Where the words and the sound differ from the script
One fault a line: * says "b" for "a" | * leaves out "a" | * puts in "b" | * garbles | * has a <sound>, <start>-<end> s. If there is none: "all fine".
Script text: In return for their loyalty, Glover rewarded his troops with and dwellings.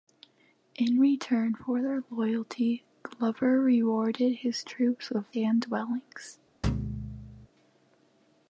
* has a thud, 6.6-7.5 s